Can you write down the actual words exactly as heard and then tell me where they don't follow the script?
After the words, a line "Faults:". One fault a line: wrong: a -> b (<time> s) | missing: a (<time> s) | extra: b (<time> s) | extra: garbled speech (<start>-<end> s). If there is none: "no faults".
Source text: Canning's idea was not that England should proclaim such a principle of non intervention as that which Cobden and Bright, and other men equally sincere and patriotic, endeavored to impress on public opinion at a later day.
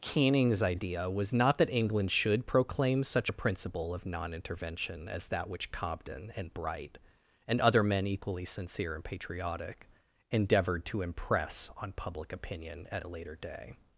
Canning's idea was not that England should proclaim such a principle of non intervention as that which Cobden and Bright, and other men equally sincere and patriotic, endeavored to impress on public opinion at a later day.
Faults:
no faults